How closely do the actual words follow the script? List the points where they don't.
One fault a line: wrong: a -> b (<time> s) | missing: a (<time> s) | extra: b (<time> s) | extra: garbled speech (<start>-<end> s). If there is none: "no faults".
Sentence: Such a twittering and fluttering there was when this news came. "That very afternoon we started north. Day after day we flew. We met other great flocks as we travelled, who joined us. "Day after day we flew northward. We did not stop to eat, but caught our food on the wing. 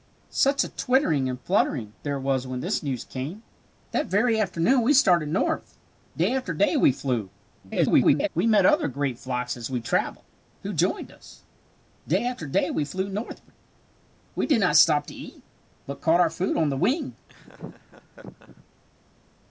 extra: garbled speech (7.6-8.3 s)